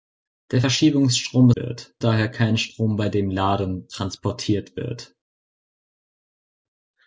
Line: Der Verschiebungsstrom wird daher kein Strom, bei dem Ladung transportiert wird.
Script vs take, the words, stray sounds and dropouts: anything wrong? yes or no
no